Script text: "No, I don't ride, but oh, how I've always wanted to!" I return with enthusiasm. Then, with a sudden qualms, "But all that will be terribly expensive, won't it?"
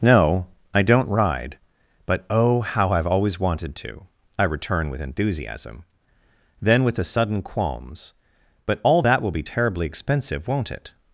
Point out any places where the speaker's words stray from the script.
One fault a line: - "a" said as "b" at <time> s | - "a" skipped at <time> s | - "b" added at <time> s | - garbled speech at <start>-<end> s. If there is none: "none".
none